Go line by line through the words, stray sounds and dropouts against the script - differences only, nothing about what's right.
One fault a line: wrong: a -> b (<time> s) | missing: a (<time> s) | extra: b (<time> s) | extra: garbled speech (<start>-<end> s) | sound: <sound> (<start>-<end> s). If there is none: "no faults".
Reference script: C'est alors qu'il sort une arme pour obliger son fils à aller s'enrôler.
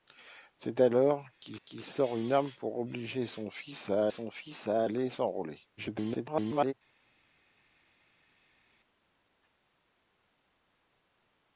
extra: qu'il (1.6 s)
extra: son fils à (4.1 s)
extra: garbled speech (5.8-6.7 s)